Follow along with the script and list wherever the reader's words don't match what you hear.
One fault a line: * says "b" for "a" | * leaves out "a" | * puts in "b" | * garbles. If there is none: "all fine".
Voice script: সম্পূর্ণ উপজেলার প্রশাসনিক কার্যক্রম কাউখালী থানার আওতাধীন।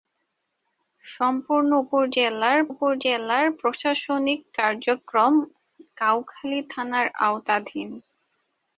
* puts in "উপজেলার"